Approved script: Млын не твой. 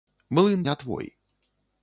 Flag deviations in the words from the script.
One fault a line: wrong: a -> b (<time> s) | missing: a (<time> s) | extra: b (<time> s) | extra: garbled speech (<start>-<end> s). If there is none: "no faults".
no faults